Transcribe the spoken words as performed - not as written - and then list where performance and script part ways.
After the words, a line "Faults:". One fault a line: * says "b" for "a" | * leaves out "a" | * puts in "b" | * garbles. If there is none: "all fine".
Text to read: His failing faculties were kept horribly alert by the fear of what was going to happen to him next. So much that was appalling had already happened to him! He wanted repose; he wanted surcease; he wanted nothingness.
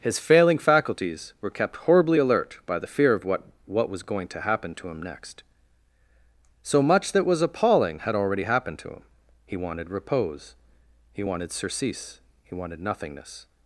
His failing faculties were kept horribly alert by the fear of what what was going to happen to him next. So much that was appalling had already happened to him! He wanted repose; he wanted surcease; he wanted nothingness.
Faults:
* puts in "what"